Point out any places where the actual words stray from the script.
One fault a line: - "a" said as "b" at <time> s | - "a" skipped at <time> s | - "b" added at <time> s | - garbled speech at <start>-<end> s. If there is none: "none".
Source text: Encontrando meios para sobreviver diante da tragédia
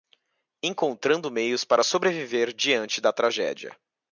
none